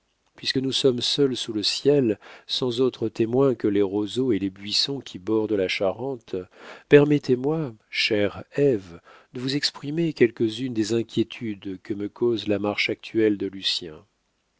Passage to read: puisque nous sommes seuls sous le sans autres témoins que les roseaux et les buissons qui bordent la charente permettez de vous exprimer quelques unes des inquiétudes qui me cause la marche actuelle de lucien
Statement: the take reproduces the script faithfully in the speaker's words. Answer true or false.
false